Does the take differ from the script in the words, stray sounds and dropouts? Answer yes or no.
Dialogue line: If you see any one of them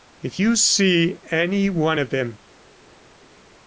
no